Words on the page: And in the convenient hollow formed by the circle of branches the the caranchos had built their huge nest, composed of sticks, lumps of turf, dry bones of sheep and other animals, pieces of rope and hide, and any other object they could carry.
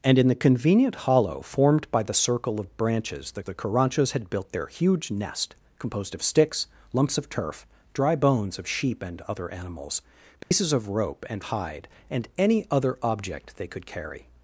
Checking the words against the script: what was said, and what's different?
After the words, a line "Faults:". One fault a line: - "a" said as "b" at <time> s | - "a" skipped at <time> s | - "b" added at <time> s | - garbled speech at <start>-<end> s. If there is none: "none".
And in the convenient hollow formed by the circle of branches the the caranchos had built their huge nest, composed of sticks, lumps of turf, dry bones of sheep and other animals, pieces of rope and hide, and any other object they could carry.
Faults:
none